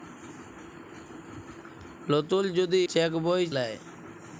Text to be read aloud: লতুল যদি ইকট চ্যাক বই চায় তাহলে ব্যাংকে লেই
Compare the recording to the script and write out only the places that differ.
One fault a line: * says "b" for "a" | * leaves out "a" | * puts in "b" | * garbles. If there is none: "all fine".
* leaves out "ইকট"
* leaves out "চায় তাহলে ব্যাংকে"